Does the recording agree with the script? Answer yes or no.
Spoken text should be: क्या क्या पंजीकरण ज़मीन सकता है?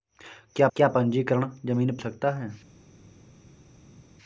yes